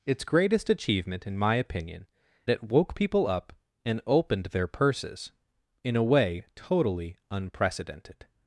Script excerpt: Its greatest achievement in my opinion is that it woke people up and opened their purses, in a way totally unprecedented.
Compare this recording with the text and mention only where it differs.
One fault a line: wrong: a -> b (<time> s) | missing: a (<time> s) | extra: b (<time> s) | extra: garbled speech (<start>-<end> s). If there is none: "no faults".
missing: is that (2.1 s)